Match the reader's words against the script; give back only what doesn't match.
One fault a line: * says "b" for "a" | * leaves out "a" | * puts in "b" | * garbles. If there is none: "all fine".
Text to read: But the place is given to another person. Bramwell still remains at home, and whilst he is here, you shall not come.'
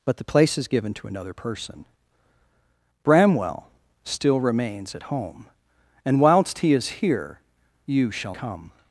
* leaves out "not"